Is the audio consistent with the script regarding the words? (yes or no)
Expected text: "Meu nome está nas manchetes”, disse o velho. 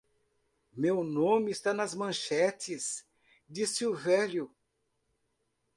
yes